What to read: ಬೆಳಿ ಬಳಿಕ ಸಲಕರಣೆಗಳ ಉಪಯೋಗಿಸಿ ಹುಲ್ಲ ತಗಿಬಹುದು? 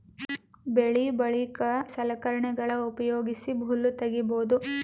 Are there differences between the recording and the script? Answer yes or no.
no